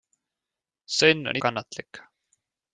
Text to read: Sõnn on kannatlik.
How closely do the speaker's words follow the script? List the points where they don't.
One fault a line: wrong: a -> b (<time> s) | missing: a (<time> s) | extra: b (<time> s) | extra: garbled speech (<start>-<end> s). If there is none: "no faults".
no faults